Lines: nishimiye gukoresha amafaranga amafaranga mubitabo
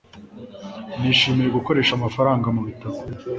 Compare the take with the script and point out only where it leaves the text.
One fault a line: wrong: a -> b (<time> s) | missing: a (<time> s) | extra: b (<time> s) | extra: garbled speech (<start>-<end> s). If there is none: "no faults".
missing: amafaranga (2.5 s)